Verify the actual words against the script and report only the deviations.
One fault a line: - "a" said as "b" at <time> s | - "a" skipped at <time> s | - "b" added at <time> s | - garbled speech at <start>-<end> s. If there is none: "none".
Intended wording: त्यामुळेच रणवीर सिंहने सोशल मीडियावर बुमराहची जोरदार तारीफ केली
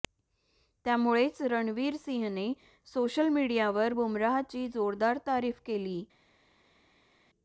none